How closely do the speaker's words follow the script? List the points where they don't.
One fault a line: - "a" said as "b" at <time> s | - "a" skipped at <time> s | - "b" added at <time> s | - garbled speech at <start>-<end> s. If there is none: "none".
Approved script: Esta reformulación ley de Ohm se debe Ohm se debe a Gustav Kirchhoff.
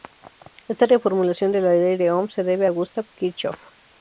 - "ley" skipped at 1.5 s
- "Ohm se debe" said as "la ley de" at 1.6 s